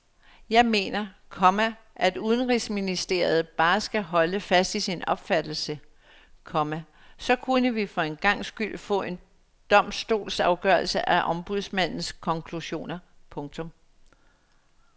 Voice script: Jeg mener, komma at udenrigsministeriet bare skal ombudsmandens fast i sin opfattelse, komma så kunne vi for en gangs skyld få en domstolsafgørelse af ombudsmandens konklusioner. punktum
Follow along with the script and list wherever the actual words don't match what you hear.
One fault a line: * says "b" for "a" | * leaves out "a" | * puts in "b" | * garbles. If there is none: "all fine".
* says "holde" for "ombudsmandens"